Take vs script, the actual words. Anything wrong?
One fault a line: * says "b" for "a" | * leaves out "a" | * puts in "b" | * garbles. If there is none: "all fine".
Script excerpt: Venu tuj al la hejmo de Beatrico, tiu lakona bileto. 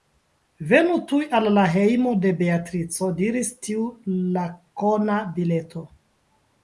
* puts in "diris"